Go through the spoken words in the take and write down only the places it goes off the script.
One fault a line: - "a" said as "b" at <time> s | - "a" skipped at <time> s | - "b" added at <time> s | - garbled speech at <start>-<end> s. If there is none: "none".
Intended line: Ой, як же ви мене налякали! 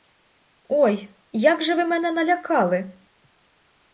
none